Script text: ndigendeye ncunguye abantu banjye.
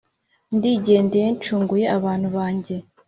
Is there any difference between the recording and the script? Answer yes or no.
no